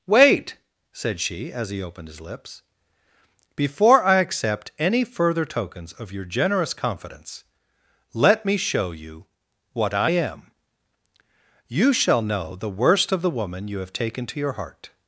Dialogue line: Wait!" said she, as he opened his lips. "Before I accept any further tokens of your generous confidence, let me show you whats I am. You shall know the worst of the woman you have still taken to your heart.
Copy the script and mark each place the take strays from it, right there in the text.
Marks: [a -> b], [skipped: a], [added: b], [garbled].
Wait!" said she, as he opened his lips. "Before I accept any further tokens of your generous confidence, let me show you [whats -> what] I am. You shall know the worst of the woman you have [skipped: still] taken to your heart.